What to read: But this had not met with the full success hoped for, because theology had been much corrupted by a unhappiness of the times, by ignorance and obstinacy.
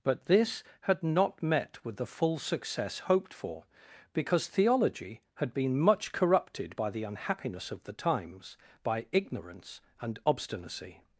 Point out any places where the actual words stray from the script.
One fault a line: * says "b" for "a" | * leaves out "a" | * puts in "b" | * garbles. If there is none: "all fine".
* says "the" for "a"